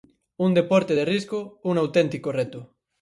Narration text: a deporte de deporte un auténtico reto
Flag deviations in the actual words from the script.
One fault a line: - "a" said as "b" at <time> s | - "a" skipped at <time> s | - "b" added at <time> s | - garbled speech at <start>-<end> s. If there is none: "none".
- "a" said as "un" at 0.5 s
- "deporte" said as "risco" at 1.0 s